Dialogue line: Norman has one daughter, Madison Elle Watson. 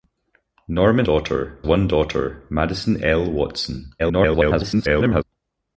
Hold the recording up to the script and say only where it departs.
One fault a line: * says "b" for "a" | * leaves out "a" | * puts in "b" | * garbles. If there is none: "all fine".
* says "daughter" for "has"
* garbles